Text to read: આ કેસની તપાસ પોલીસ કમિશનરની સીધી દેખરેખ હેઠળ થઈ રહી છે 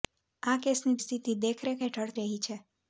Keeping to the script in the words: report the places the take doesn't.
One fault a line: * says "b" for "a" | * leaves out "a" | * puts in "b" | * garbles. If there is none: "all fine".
* leaves out "તપાસ પોલીસ કમિશનરની"
* leaves out "થઈ"